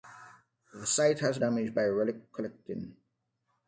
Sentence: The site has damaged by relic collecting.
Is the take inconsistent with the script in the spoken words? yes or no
no